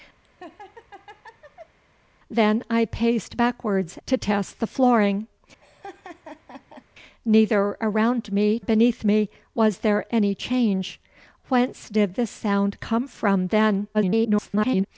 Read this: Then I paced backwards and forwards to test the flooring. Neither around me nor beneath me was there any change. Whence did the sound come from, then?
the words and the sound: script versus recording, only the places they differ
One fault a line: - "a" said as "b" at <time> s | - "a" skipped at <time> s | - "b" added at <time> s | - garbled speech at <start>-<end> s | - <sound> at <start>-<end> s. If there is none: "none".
- laugh at 0.2-1.8 s
- "and forwards" skipped at 4.0 s
- laugh at 5.6-6.8 s
- "nor" skipped at 8.6 s
- garbled speech at 13.9-14.9 s